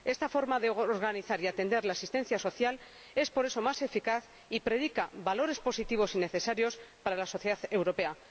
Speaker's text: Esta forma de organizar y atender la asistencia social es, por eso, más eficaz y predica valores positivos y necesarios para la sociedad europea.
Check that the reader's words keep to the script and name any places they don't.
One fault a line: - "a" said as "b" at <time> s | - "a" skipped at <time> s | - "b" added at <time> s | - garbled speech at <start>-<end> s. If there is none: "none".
none